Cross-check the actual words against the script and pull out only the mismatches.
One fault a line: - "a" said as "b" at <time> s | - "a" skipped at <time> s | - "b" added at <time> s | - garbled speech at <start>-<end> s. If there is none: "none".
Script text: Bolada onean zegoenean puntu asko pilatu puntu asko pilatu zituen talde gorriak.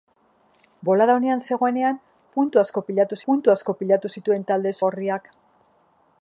none